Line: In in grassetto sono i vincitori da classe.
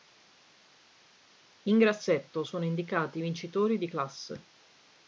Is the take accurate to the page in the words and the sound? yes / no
no